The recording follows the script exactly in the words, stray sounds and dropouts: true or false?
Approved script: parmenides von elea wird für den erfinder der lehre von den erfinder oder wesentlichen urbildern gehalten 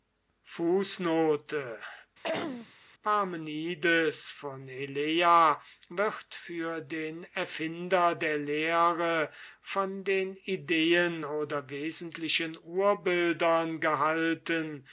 false